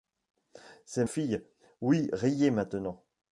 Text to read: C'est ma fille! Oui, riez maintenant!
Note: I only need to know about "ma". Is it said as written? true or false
false